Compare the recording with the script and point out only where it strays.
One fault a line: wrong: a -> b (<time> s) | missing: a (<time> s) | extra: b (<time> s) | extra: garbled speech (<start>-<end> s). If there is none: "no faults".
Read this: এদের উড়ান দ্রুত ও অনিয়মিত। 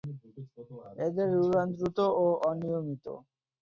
no faults